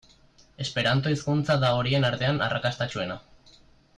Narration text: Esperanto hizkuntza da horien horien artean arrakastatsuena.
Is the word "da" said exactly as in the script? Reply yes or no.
yes